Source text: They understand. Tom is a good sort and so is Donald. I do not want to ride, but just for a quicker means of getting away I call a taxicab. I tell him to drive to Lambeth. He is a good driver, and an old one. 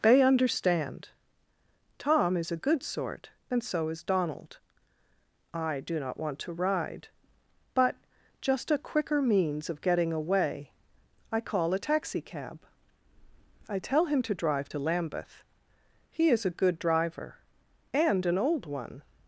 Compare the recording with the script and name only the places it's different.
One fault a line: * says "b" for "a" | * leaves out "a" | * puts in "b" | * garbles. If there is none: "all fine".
* leaves out "for"